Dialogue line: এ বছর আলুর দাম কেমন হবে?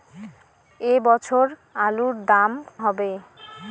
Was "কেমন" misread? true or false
true